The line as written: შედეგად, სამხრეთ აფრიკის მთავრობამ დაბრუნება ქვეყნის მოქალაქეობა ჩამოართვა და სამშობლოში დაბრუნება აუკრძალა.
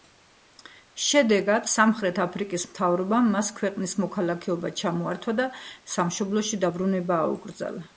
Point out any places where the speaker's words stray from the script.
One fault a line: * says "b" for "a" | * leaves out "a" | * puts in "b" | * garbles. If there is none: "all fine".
* says "მას" for "დაბრუნება"